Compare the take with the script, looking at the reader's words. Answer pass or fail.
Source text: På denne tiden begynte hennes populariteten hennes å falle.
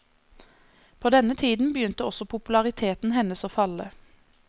fail